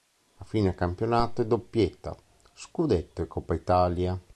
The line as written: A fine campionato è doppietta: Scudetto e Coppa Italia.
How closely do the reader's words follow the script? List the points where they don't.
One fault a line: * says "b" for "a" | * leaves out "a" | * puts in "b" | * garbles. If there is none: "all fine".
all fine